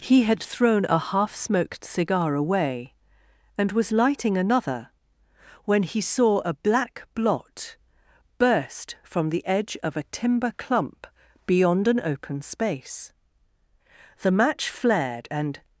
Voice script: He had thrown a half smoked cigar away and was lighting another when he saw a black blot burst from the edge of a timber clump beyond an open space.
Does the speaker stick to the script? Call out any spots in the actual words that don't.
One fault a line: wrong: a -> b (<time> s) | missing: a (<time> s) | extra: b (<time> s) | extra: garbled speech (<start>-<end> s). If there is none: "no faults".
extra: The match flared and (14.2 s)